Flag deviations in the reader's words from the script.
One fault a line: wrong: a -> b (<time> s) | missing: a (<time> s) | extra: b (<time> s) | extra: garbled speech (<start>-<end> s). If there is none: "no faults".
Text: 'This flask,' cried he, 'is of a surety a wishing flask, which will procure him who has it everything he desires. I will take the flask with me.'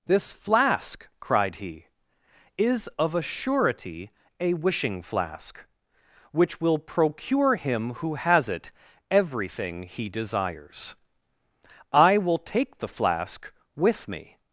no faults